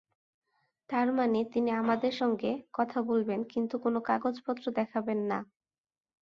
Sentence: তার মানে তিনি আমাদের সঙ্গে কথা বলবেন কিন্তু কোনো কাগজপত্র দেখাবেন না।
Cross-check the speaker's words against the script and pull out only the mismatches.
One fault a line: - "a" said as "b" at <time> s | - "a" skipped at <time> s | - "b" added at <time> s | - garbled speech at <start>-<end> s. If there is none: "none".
none